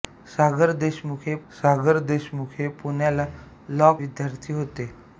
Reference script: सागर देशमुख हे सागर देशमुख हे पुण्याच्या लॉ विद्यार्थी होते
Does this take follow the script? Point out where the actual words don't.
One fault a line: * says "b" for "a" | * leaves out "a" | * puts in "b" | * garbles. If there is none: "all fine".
all fine